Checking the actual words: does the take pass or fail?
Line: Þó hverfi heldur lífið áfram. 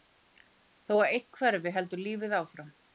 fail